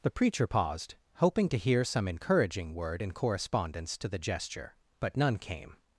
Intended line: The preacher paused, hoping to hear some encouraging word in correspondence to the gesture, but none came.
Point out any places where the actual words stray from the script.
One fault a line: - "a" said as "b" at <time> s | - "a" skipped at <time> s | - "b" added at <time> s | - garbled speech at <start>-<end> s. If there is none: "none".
none